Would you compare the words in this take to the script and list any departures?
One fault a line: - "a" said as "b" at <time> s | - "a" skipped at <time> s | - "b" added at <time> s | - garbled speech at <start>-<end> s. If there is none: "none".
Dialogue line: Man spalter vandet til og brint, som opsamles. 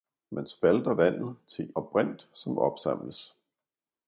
none